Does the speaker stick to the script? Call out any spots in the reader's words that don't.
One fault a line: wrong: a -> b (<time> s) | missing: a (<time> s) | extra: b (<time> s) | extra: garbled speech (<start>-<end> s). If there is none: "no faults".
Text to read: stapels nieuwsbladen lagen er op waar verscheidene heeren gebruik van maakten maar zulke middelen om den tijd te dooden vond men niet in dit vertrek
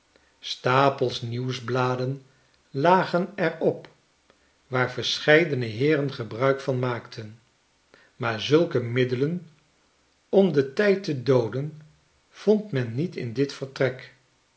no faults